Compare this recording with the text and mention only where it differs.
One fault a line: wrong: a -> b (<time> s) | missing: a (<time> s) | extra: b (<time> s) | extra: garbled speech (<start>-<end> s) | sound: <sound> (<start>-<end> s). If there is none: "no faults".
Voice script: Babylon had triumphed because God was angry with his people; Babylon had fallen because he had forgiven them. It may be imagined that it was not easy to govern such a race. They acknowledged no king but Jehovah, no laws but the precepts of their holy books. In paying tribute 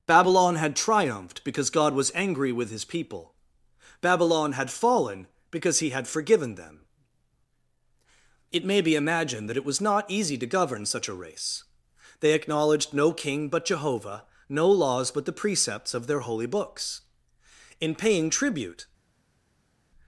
no faults